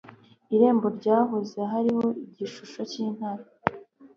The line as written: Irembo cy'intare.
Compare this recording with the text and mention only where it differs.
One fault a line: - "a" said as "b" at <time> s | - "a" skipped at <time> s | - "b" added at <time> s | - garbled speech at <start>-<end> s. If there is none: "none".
- "ryahoze hariho igishusho" added at 1.0 s